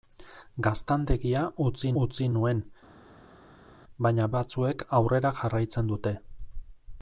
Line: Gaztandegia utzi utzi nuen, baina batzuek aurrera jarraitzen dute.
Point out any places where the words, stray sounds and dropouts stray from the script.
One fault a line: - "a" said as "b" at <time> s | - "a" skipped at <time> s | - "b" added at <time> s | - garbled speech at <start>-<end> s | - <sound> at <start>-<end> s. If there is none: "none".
none